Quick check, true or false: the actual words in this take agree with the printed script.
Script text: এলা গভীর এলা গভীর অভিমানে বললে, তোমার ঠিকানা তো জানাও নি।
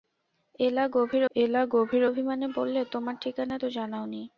true